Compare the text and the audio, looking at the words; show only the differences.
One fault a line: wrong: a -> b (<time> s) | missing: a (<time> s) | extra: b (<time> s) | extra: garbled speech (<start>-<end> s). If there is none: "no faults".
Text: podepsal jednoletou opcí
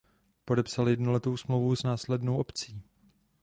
extra: smlouvu s následnou (1.4 s)